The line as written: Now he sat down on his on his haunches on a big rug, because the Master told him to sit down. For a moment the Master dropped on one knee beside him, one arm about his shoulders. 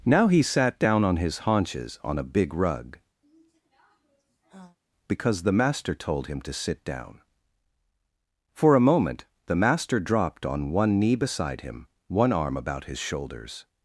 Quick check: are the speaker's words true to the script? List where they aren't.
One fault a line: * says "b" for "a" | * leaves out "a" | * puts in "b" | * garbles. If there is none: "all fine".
* leaves out "on his"